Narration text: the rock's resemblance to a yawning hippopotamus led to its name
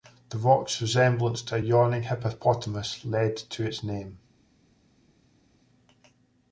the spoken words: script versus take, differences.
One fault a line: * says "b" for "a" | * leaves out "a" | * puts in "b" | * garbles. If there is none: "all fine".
all fine